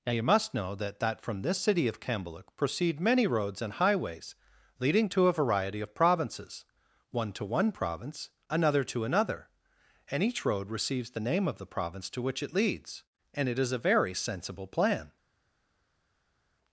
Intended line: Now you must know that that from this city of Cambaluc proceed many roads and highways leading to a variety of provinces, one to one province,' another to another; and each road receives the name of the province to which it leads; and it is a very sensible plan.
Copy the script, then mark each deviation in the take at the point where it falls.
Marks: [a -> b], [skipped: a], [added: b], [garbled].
Now you must know that that from this city of Cambaluc proceed many roads and highways leading to a variety of provinces, one to one province,' another to another; and each road receives the name of the province to which it leads; and it is a very sensible plan.